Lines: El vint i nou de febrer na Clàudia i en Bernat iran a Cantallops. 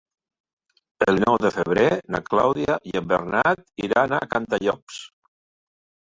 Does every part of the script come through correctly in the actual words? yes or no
no